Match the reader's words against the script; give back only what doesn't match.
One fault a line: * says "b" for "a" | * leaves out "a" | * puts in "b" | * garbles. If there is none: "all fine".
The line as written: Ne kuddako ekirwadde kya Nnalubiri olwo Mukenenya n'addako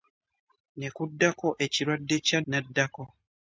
* leaves out "Nnalubiri olwo Mukenenya"